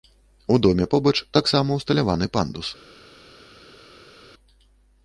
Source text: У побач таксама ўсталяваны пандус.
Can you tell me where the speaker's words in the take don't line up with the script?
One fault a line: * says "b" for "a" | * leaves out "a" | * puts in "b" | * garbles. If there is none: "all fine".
* puts in "доме"